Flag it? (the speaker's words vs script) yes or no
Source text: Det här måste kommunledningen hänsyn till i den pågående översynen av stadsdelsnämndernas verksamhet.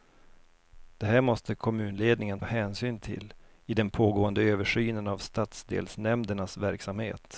no